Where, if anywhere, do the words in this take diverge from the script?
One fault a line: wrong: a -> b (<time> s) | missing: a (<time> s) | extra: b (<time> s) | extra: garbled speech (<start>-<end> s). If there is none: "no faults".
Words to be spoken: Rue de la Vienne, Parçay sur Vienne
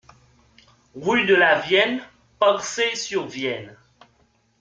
no faults